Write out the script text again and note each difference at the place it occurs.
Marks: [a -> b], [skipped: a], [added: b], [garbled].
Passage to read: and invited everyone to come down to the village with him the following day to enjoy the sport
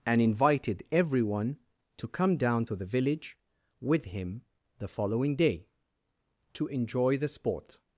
and invited everyone to come down to the village with him the following day to enjoy the sport